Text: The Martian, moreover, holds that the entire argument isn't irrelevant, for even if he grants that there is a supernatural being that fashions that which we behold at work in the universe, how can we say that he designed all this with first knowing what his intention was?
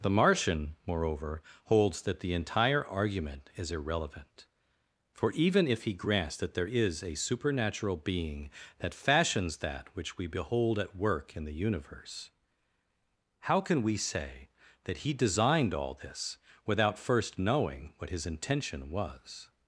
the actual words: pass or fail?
fail